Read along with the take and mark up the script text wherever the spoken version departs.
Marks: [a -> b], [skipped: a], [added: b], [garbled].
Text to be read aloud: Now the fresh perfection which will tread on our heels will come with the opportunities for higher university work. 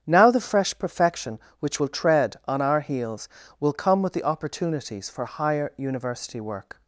Now the fresh perfection which will tread on our heels will come with the opportunities for higher university work.